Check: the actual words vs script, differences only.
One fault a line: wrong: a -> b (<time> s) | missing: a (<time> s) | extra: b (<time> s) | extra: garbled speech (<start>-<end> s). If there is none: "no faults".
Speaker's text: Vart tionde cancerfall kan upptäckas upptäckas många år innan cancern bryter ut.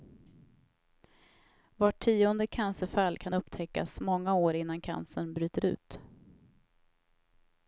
missing: upptäckas (4.0 s)